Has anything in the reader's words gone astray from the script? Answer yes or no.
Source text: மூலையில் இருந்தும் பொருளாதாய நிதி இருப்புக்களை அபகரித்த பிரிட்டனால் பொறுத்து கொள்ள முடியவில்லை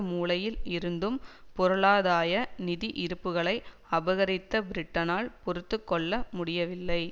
no